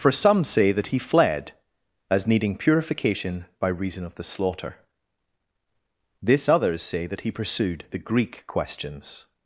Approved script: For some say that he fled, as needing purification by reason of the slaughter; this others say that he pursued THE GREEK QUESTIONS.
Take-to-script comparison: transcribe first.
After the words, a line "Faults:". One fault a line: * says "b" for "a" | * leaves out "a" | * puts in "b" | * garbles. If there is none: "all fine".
For some say that he fled, as needing purification by reason of the slaughter; this others say that he pursued THE GREEK QUESTIONS.
Faults:
all fine